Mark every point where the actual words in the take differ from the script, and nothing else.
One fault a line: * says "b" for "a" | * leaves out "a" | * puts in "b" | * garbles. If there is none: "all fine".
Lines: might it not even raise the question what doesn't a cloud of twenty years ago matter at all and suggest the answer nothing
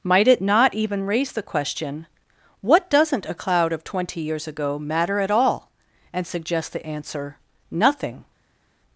all fine